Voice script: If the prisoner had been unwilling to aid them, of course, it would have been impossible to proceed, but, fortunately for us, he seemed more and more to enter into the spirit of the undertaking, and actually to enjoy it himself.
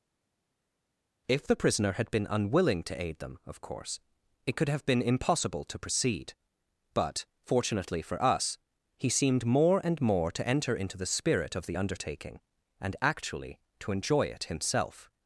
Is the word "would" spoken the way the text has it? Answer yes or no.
no